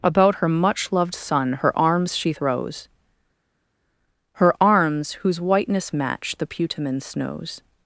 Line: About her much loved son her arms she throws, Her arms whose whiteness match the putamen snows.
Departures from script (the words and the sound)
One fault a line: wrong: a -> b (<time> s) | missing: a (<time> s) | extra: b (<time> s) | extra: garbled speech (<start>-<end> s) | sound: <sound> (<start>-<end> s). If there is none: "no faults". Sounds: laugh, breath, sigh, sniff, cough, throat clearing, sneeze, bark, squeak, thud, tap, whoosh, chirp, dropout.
no faults